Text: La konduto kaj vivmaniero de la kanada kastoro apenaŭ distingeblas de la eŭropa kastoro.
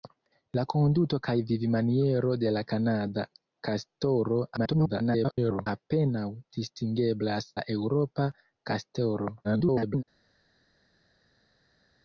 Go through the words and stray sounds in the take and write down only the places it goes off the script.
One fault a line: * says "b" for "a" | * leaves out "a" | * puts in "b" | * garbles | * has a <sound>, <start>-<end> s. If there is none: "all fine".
* garbles
* leaves out "de"
* garbles